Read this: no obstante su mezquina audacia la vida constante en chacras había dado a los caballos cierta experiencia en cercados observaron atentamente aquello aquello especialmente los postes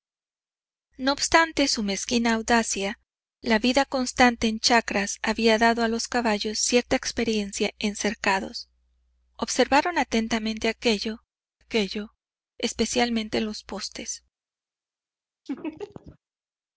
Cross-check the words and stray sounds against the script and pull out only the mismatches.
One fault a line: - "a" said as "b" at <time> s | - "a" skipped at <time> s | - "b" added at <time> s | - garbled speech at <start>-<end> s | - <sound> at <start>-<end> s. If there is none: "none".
- laugh at 15.5-16.2 s